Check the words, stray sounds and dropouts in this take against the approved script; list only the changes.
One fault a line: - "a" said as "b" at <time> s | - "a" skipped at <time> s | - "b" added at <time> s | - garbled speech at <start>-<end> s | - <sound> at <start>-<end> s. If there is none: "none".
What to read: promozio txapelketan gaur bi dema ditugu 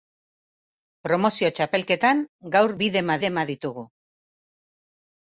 - "dema" added at 3.3 s